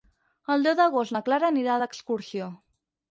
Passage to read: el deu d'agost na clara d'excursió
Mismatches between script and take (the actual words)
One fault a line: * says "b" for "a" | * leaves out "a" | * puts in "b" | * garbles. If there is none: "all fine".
* puts in "anirà"